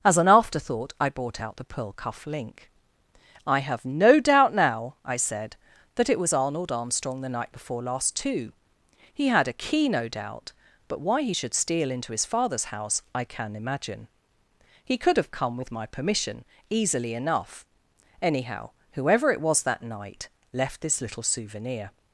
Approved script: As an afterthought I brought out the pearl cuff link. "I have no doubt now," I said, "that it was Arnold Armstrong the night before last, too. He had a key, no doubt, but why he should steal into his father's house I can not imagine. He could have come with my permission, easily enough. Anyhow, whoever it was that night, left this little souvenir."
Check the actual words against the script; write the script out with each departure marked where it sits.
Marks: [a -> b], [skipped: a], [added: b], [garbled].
As an afterthought I brought out the pearl cuff link. "I have no doubt now," I said, "that it was Arnold Armstrong the night before last, too. He had a key, no doubt, but why he should steal into his father's house I can [skipped: not] imagine. He could have come with my permission, easily enough. Anyhow, whoever it was that night, left this little souvenir."